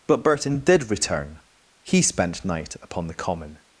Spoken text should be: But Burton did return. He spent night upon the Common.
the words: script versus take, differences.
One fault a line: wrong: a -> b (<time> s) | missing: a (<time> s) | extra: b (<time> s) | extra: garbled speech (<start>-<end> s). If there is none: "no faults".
no faults